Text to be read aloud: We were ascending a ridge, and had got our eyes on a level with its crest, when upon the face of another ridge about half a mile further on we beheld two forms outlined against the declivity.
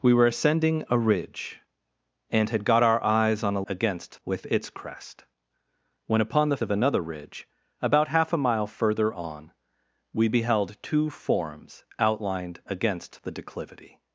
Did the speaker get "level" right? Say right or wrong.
wrong